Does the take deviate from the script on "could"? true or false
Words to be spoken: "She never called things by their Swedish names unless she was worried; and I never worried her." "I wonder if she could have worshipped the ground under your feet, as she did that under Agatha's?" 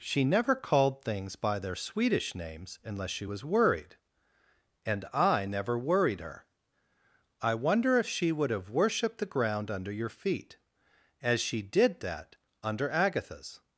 true